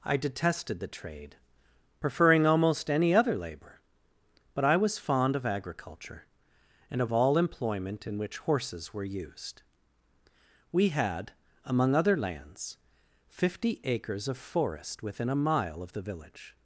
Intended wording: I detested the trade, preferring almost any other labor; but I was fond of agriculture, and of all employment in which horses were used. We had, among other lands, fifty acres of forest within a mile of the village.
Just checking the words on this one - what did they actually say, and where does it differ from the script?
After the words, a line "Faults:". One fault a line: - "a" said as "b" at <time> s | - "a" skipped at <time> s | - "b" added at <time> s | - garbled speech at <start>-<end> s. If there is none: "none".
I detested the trade, preferring almost any other labor; but I was fond of agriculture, and of all employment in which horses were used. We had, among other lands, fifty acres of forest within a mile of the village.
Faults:
none